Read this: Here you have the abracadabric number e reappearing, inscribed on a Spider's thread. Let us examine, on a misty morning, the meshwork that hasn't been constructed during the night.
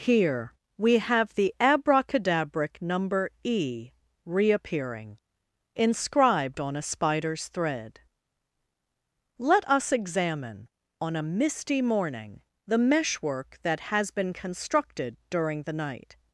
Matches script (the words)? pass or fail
fail